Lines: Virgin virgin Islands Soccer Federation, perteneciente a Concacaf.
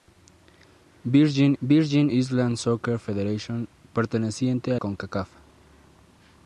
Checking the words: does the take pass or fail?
pass